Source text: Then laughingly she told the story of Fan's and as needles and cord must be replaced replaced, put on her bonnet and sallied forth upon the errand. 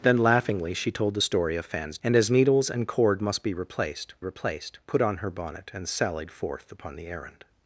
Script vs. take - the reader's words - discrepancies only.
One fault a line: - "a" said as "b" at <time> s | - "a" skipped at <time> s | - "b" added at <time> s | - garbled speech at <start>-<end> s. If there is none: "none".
none